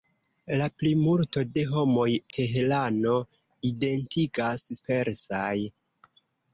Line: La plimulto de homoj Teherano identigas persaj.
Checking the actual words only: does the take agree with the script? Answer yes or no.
yes